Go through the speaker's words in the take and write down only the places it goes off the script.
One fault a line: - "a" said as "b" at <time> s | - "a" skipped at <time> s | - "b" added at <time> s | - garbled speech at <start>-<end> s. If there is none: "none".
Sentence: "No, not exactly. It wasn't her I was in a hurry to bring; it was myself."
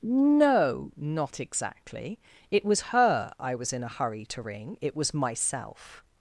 - "wasn't" said as "was" at 2.6 s
- "bring" said as "ring" at 4.4 s